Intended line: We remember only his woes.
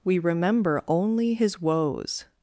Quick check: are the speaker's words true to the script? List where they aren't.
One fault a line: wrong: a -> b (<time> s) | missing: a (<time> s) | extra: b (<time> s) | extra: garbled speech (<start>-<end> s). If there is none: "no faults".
no faults